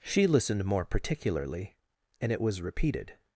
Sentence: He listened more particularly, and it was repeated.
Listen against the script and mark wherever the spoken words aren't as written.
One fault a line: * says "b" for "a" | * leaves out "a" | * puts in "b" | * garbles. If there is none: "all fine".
* says "She" for "He"